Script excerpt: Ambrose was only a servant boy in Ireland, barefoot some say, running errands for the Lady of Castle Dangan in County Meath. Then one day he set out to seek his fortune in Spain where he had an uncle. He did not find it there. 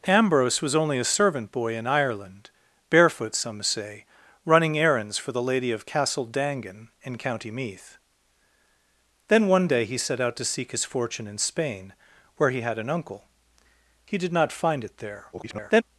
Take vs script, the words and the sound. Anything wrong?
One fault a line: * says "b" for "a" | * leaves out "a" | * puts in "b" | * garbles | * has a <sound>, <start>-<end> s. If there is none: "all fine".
* garbles